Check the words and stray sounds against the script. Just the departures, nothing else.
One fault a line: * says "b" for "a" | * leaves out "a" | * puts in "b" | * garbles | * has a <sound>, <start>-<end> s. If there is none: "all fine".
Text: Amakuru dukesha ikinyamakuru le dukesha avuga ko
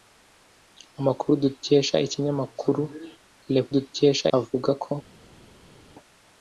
all fine